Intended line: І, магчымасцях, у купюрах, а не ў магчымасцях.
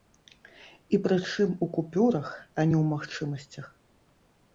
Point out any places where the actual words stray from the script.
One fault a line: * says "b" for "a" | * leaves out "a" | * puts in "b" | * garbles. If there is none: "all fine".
* says "прычым" for "магчымасцях"